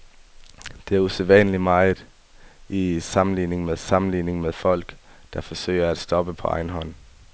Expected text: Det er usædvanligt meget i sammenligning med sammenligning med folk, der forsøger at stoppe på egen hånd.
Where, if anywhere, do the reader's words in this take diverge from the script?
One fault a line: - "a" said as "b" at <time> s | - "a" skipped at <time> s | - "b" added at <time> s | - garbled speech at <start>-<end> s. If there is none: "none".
none